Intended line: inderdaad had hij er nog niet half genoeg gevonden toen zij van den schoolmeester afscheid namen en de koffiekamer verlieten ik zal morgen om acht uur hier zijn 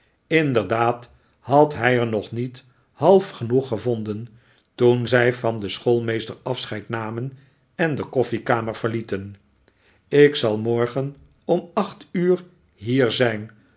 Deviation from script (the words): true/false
false